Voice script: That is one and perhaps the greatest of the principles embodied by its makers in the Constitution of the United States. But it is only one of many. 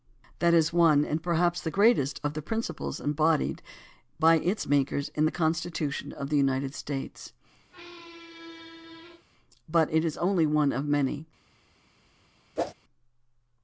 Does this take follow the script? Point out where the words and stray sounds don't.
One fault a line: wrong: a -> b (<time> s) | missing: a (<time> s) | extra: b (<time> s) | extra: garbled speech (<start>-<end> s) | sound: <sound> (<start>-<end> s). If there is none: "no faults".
sound: squeak (7.7-9.3 s)
sound: whoosh (12.6-12.7 s)